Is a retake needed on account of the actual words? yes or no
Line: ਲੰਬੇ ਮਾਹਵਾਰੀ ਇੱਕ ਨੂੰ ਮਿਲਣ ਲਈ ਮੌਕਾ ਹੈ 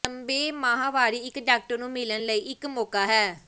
yes